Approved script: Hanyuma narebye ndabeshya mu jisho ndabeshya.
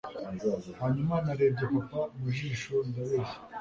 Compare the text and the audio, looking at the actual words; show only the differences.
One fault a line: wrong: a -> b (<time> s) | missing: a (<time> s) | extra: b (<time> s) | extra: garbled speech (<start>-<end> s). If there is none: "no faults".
wrong: ndabeshya -> papa (1.7 s)